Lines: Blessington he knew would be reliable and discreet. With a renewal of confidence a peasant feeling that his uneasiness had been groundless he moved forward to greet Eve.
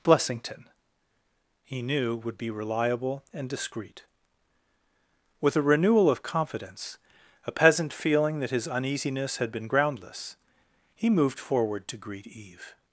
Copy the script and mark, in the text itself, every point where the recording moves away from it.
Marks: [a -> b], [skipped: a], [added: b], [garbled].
Blessington he knew would be reliable and discreet. With a renewal of confidence a peasant feeling that his uneasiness had been groundless he moved forward to greet Eve.